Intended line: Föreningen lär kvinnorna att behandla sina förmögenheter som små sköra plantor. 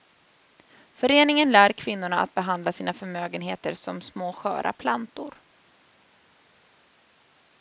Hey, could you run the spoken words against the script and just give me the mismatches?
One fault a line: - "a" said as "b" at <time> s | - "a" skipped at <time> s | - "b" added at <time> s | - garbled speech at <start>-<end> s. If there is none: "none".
none